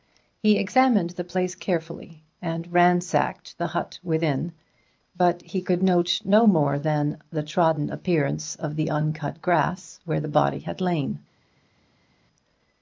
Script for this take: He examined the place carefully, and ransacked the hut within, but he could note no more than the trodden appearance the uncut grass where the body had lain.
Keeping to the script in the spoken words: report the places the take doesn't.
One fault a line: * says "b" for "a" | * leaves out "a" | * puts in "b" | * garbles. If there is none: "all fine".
* puts in "of"